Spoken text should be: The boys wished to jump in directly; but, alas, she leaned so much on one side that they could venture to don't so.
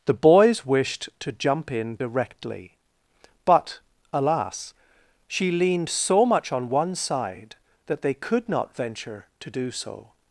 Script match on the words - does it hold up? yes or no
no